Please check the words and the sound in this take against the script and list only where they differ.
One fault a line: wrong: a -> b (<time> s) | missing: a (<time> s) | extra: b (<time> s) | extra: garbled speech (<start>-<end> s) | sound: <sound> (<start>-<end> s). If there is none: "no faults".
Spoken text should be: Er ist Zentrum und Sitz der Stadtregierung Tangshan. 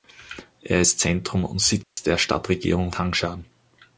sound: dropout (1.8-2.0 s)